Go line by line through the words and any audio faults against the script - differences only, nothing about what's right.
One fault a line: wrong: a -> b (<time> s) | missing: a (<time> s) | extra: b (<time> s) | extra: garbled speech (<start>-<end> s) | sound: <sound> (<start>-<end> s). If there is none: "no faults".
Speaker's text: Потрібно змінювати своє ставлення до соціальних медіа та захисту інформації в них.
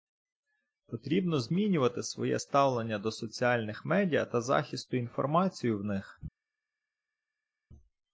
no faults